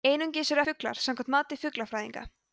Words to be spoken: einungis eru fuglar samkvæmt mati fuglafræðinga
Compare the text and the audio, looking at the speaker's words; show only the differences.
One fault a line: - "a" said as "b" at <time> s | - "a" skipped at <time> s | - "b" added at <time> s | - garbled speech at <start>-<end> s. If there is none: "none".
none